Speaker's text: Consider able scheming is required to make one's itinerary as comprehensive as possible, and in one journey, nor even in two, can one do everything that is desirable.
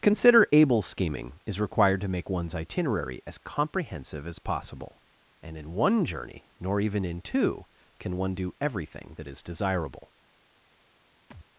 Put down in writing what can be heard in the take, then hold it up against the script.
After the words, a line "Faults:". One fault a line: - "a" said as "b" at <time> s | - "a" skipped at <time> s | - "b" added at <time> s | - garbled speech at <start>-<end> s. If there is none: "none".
Consider able scheming is required to make one's itinerary as comprehensive as possible, and in one journey, nor even in two, can one do everything that is desirable.
Faults:
none